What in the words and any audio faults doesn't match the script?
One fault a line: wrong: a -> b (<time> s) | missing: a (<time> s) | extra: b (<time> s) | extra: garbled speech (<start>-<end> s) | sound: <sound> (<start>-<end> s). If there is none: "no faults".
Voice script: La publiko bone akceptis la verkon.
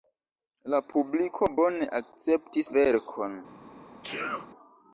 missing: la (2.7 s)
sound: sneeze (4.0-4.5 s)